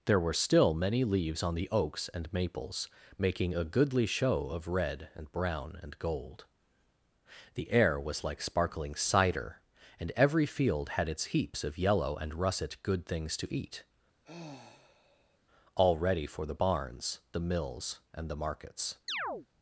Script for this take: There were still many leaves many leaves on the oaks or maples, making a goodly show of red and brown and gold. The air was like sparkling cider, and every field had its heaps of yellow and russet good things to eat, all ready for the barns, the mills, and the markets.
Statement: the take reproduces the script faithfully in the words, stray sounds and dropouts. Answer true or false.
false